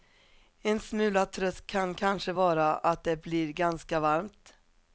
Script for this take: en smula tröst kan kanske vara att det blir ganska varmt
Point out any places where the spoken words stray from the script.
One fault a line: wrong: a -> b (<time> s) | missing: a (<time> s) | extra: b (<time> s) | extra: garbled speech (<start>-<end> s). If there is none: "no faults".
no faults